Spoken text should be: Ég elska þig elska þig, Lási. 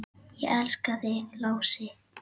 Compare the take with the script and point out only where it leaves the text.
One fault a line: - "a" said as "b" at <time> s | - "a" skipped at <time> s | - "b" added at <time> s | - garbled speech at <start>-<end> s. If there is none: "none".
- "elska þig" skipped at 1.2 s